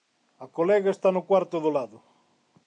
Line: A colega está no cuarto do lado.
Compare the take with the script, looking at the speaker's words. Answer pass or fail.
pass